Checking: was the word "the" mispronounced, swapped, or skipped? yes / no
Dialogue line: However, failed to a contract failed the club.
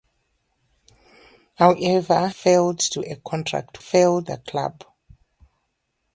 no